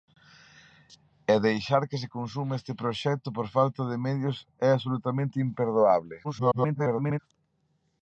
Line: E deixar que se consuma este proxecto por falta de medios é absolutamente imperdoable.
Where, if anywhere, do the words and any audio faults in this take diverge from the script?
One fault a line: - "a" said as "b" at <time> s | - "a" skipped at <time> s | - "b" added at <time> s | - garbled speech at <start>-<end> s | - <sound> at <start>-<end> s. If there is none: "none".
- garbled speech at 6.2-7.2 s